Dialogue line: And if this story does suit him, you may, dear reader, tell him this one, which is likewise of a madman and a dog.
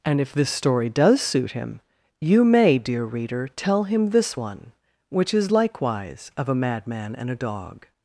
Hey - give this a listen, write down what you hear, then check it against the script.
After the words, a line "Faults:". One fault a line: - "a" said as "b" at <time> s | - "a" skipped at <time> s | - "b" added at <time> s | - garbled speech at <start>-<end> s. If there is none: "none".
And if this story does suit him, you may, dear reader, tell him this one, which is likewise of a madman and a dog.
Faults:
none